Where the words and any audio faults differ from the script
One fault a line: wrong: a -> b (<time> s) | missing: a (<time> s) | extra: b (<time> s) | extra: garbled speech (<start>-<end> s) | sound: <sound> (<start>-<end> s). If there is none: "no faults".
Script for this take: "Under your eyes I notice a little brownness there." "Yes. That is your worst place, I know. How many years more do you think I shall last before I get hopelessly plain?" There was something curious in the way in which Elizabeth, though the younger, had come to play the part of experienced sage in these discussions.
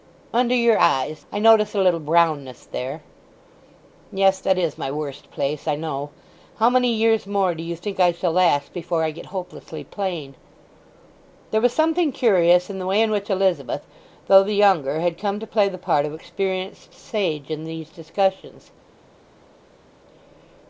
wrong: your -> my (4.8 s)